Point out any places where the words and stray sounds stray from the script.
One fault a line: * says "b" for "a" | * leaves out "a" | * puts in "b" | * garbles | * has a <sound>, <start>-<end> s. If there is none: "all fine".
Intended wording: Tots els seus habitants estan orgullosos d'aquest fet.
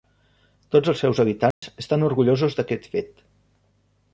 * has a dropout, 1.5-1.6 s